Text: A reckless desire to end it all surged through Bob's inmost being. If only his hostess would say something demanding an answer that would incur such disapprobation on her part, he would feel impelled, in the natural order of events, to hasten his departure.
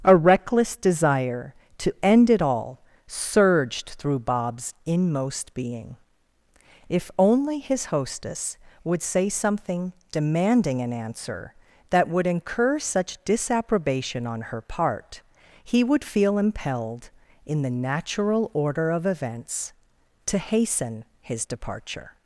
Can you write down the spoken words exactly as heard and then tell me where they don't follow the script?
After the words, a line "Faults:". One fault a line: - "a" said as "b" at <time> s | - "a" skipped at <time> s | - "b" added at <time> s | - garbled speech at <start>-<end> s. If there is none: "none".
A reckless desire to end it all surged through Bob's inmost being. If only his hostess would say something demanding an answer that would incur such disapprobation on her part, he would feel impelled, in the natural order of events, to hasten his departure.
Faults:
none